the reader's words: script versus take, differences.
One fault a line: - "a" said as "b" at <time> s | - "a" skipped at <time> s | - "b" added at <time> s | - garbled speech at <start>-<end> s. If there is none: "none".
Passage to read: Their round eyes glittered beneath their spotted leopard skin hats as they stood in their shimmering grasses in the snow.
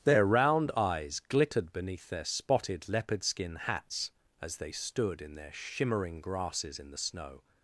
none